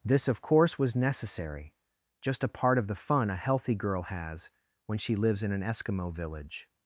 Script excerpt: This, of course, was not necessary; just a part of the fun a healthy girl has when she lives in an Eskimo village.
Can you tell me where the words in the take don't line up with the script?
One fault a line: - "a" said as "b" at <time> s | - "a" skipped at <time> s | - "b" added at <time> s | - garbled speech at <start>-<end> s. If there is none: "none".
- "not" skipped at 0.9 s